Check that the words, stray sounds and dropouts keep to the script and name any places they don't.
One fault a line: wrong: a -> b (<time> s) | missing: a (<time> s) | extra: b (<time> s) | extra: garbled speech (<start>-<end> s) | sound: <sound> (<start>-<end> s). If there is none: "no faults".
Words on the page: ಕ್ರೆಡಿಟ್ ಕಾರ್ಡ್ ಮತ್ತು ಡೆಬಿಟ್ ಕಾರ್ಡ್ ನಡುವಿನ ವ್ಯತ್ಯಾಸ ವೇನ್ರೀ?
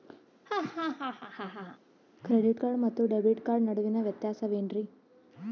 sound: laugh (0.4-1.8 s)